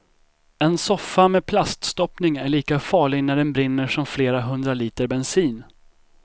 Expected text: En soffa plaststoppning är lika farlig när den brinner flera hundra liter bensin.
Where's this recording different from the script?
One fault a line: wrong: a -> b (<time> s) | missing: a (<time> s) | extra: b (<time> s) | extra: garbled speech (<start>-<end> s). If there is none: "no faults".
extra: med (1.3 s)
extra: som (3.9 s)